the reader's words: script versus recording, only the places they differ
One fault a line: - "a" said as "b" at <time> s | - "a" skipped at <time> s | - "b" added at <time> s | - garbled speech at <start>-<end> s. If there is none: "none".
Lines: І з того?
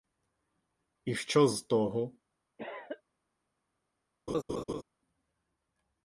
- "що" added at 1.1 s